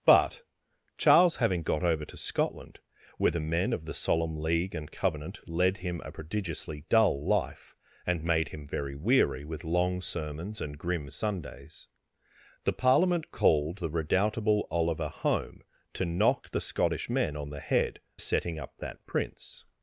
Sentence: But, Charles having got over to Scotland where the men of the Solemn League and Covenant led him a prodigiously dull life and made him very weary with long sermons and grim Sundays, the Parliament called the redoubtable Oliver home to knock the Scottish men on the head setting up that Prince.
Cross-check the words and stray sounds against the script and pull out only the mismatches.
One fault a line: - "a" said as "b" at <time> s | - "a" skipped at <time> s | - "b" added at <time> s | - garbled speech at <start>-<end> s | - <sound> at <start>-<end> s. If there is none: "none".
none